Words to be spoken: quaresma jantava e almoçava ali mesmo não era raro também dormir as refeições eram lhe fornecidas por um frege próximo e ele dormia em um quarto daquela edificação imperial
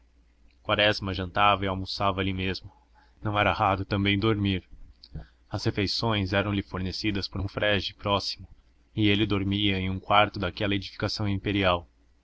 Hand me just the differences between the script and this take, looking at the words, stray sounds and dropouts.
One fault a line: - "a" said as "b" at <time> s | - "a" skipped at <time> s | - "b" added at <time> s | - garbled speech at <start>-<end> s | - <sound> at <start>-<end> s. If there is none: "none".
none